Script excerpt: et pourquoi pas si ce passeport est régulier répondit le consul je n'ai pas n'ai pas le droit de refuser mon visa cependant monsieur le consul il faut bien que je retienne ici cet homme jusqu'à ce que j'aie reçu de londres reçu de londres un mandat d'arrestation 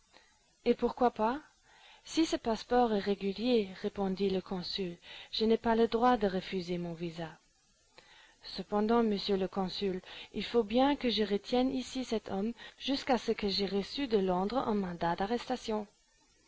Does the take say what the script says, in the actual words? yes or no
no